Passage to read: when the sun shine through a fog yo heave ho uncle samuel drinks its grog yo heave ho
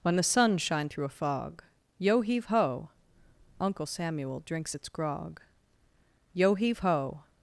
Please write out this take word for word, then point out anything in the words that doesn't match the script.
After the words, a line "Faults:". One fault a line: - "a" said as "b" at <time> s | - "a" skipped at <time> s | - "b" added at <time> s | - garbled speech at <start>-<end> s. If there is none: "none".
when the sun shine through a fog yo heave ho uncle samuel drinks its grog yo heave ho
Faults:
none